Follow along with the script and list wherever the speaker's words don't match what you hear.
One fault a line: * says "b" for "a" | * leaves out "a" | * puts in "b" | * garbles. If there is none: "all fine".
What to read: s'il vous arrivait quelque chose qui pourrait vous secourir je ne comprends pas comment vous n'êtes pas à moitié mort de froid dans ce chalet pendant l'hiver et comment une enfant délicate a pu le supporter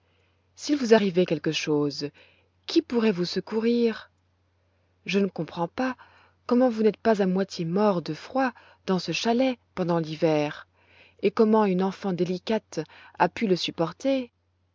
all fine